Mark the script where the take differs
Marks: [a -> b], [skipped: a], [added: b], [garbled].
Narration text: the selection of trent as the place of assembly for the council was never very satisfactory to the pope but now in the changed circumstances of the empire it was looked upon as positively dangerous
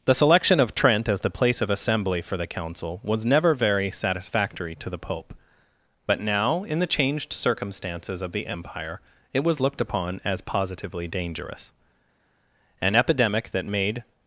the selection of trent as the place of assembly for the council was never very satisfactory to the pope but now in the changed circumstances of the empire it was looked upon as positively dangerous [added: an epidemic that made]